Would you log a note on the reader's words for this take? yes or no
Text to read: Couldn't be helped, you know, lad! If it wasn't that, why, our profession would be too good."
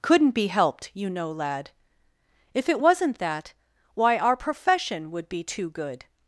no